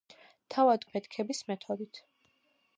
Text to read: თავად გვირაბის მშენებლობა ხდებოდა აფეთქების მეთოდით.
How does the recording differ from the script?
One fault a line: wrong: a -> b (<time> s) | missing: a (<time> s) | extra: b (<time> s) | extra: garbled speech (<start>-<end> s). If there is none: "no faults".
missing: გვირაბის მშენებლობა ხდებოდა (0.9 s)